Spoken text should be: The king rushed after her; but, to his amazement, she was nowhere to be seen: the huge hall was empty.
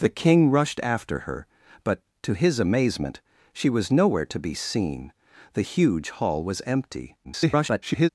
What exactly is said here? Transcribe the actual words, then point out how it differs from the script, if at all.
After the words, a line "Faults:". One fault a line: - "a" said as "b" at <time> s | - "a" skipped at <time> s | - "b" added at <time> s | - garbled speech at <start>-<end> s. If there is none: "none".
The king rushed after her; but, to his amazement, she was nowhere to be seen: the huge hall was empty. [garbled]
Faults:
- garbled speech at 7.2-8.1 s